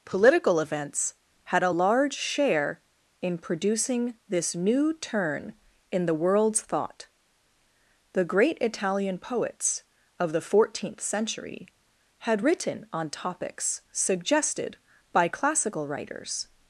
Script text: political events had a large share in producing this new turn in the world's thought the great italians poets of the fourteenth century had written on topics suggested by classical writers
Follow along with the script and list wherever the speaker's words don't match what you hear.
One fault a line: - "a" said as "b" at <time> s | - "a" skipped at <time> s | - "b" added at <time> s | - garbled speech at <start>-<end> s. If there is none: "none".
- "italians" said as "italian" at 8.6 s